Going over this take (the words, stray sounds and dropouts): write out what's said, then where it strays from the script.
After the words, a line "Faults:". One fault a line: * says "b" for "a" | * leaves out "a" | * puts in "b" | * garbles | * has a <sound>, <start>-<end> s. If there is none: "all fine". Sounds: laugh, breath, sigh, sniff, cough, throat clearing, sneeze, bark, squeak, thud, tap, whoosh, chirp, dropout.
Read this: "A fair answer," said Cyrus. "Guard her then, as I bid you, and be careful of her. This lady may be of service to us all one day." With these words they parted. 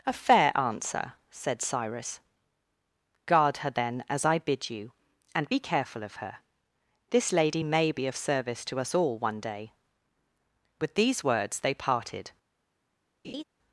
"A fair answer," said Cyrus. "Guard her then, as I bid you, and be careful of her. This lady may be of service to us all one day." With these words they parted.
Faults:
* has a laugh, 13.2-13.4 s